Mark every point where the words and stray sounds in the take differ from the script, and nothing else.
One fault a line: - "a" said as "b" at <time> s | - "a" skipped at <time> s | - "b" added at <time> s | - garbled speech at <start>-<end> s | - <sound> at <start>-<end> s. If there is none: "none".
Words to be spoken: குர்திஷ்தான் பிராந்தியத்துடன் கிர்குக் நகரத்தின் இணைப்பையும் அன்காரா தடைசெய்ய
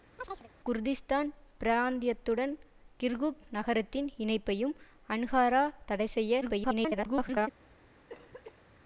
- chirp at 0.2-0.5 s
- garbled speech at 6.4-7.5 s
- cough at 8.1-8.8 s